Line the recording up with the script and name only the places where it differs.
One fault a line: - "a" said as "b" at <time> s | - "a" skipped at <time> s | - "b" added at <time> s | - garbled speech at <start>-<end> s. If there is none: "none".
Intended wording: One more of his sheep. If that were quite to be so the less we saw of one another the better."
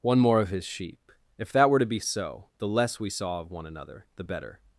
- "quite" skipped at 1.8 s